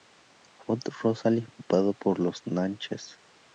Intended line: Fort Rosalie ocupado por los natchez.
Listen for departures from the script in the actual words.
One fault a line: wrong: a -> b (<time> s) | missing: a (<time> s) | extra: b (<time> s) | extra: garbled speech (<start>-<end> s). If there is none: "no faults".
no faults